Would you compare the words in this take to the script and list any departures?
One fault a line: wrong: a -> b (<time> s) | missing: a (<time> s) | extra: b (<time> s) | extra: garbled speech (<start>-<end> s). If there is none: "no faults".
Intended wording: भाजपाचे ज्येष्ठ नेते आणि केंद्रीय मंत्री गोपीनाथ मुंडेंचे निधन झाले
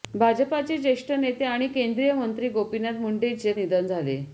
no faults